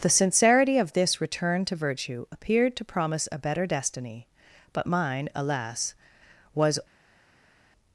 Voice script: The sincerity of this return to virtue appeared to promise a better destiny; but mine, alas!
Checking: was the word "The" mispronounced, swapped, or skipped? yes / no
no